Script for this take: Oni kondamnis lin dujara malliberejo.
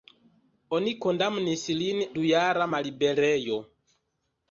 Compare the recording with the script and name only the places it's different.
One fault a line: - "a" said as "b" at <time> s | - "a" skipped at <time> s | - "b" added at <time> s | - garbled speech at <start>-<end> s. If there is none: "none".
none